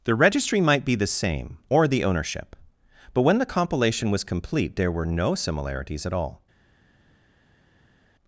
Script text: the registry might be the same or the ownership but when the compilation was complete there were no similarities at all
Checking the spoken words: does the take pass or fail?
pass